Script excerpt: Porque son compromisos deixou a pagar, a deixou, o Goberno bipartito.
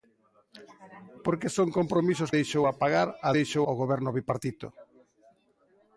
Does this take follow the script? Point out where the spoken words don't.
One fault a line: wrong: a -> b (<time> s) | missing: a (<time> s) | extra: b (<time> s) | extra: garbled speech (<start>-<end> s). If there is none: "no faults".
no faults